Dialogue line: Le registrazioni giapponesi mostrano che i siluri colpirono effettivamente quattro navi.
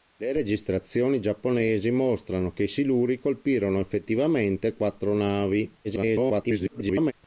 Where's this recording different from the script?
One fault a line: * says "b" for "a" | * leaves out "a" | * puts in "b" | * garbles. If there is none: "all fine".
* garbles